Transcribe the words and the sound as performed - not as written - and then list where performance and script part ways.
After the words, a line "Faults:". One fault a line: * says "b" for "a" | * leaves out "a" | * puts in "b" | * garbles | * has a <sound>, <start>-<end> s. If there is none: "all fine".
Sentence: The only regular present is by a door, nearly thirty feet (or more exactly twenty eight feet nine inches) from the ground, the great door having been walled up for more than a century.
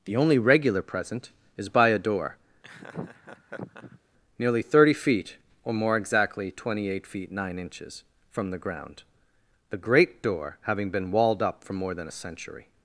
The only regular present is by a door, nearly thirty feet (or more exactly twenty eight feet nine inches) from the ground, the great door having been walled up for more than a century.
Faults:
* has a laugh, 2.6-4.0 s